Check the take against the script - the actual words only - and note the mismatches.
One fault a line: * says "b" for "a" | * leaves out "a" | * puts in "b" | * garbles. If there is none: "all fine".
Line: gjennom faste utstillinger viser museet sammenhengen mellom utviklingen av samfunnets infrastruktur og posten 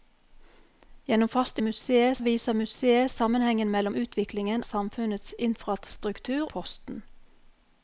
* says "museet" for "utstillinger"
* leaves out "av"
* leaves out "og"